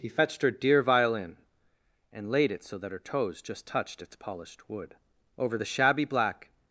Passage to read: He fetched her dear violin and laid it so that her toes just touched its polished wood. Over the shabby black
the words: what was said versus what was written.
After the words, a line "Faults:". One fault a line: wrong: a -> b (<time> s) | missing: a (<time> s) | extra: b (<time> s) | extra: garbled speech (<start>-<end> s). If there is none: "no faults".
He fetched her dear violin and laid it so that her toes just touched its polished wood. Over the shabby black
Faults:
no faults